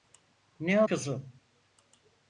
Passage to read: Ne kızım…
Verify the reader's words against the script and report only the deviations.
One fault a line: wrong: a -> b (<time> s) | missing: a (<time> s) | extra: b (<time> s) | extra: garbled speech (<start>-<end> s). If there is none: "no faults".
no faults